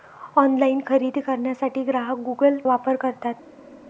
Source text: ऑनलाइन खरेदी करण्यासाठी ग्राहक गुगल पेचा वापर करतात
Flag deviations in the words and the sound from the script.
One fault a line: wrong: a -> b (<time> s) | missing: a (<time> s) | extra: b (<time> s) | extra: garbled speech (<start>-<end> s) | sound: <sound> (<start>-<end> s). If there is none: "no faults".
missing: पेचा (2.6 s)